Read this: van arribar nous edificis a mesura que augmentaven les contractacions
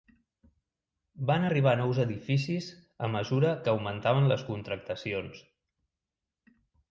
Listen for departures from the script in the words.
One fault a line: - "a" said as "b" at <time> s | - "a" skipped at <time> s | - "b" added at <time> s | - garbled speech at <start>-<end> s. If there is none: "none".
none